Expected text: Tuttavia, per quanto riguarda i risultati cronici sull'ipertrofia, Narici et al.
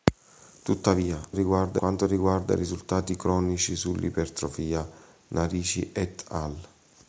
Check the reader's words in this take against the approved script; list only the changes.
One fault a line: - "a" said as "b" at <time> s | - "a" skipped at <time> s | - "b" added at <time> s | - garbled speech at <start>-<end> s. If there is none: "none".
- "per" said as "riguarda" at 1.3 s